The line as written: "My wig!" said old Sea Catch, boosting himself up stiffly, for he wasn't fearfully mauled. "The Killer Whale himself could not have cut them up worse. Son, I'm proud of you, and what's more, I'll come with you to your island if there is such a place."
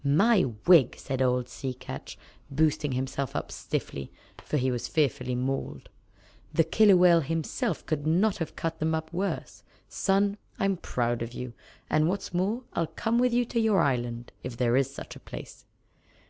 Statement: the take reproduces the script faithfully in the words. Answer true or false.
false